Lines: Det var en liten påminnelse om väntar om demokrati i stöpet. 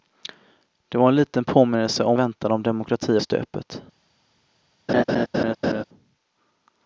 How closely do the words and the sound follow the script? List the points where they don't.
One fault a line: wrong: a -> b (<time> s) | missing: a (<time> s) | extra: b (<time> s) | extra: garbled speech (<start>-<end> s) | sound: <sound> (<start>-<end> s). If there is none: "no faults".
sound: laugh (4.9-5.8 s)